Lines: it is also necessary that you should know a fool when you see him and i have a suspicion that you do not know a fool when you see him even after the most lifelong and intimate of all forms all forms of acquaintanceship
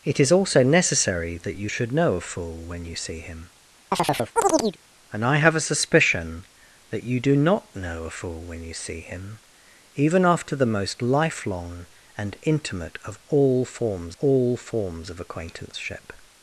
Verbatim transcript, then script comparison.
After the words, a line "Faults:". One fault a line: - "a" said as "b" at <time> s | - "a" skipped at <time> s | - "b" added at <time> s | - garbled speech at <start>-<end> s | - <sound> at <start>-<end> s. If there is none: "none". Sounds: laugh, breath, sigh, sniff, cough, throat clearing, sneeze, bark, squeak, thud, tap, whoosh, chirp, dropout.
it is also necessary that you should know a fool when you see him and i have a suspicion that you do not know a fool when you see him even after the most lifelong and intimate of all forms all forms of acquaintanceship
Faults:
- chirp at 3.9-4.8 s